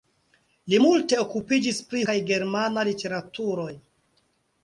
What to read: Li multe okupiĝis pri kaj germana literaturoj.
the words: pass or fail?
pass